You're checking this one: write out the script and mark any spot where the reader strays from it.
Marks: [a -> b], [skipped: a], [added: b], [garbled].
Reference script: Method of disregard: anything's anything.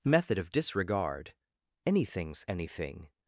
Method of disregard: anything's anything.